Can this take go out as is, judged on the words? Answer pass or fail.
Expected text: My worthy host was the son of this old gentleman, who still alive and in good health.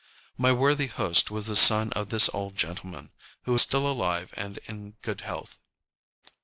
pass